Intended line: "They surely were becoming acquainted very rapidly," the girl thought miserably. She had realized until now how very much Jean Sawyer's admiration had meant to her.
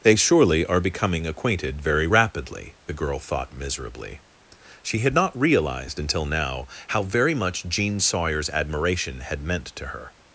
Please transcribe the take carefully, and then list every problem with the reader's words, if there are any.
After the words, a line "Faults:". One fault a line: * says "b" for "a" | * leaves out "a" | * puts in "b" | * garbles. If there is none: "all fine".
"They surely are becoming acquainted very rapidly," the girl thought miserably. She had not realized until now how very much Jean Sawyer's admiration had meant to her.
Faults:
* says "are" for "were"
* puts in "not"